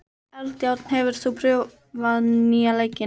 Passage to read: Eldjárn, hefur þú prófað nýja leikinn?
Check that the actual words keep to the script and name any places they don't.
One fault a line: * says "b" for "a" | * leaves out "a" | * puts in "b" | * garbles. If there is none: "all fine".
all fine